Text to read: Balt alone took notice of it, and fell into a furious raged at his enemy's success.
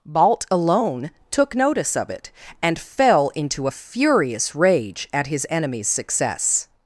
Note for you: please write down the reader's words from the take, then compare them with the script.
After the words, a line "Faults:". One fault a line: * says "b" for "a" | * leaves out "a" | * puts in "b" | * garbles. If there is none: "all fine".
Balt alone took notice of it, and fell into a furious rage at his enemy's success.
Faults:
* says "rage" for "raged"